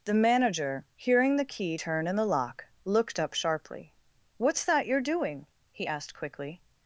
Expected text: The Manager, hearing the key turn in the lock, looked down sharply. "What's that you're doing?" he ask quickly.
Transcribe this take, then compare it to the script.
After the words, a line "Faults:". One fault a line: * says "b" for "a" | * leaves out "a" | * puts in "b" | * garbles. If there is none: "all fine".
The Manager, hearing the key turn in the lock, looked up sharply. "What's that you're doing?" he asked quickly.
Faults:
* says "up" for "down"
* says "asked" for "ask"